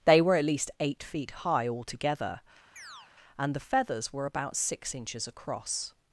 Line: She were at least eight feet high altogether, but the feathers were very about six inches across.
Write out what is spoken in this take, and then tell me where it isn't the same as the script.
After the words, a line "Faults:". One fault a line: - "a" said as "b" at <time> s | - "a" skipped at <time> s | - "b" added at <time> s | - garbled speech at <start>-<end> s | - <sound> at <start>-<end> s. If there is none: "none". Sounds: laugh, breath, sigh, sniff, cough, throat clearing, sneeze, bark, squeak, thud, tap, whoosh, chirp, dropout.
They were at least eight feet high altogether, and the feathers were about six inches across.
Faults:
- "She" said as "They" at 0.1 s
- chirp at 2.8-3.1 s
- "but" said as "and" at 3.4 s
- "very" skipped at 4.2 s